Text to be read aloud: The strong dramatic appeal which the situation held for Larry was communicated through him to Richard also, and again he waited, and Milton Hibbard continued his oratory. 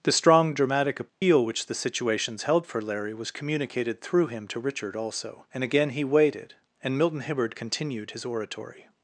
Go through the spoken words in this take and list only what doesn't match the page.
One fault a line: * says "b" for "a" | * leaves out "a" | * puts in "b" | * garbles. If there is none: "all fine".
* says "situations" for "situation"